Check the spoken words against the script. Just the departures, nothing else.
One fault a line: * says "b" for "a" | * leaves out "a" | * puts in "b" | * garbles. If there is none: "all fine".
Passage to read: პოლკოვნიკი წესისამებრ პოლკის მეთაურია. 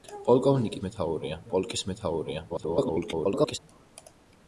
* says "მეთაურია" for "წესისამებრ"
* garbles